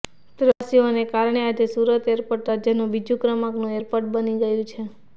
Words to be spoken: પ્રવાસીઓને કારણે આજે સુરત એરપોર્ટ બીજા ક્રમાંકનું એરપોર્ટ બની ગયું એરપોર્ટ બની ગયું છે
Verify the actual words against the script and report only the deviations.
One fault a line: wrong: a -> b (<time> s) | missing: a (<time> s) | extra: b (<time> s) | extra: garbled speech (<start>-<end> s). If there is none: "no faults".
extra: રાજ્યનું (2.5 s)
missing: એરપોર્ટ બની ગયું (4.7 s)